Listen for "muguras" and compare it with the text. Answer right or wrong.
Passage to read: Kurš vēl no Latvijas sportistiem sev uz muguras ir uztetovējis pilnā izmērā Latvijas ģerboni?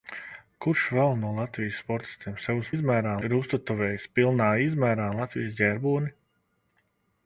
wrong